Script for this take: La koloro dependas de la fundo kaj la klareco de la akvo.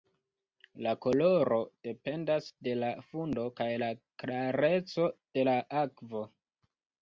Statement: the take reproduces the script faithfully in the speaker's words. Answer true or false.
true